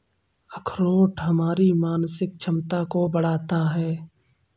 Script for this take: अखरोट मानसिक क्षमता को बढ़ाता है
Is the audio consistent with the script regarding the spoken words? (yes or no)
no